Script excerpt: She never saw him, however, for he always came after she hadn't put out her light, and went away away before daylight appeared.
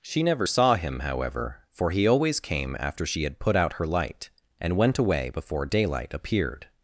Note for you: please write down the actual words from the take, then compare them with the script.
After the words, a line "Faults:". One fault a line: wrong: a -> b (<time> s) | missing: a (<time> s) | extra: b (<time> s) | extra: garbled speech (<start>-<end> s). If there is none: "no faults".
She never saw him, however, for he always came after she had put out her light, and went away before daylight appeared.
Faults:
wrong: hadn't -> had (3.2 s)
missing: away (5.3 s)